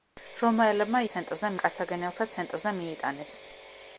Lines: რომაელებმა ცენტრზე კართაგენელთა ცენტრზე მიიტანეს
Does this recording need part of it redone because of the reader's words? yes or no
no